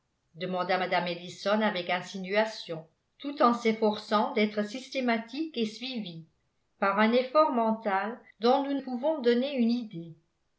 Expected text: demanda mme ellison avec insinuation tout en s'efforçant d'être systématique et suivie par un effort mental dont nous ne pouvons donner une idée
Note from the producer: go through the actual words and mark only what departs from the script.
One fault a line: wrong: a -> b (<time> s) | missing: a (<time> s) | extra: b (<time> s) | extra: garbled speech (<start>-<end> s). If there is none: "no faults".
missing: ne (8.8 s)